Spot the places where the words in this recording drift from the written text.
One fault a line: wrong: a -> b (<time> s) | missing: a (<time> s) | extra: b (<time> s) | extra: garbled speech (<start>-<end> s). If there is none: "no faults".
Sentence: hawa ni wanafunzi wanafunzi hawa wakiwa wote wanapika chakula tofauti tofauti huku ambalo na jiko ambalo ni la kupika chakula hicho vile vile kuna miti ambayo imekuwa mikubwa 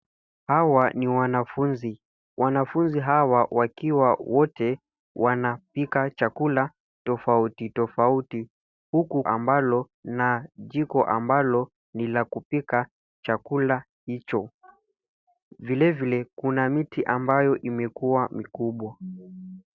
no faults